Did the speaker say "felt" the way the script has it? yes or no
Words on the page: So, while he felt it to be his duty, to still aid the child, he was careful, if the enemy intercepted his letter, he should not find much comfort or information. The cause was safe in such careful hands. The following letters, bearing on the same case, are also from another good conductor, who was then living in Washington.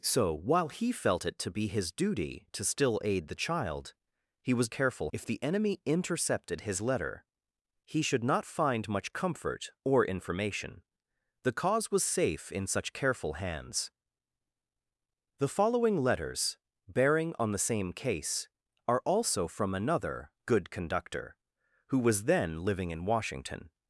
yes